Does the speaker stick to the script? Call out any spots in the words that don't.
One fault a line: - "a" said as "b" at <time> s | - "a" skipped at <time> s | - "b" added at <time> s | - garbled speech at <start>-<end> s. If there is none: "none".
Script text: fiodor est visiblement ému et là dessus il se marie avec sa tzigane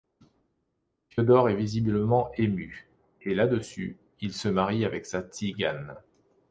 none